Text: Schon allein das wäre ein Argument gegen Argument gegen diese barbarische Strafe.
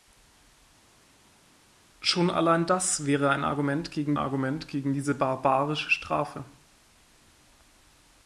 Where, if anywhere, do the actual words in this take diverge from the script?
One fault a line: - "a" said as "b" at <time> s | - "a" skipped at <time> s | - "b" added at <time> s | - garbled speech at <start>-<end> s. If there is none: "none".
none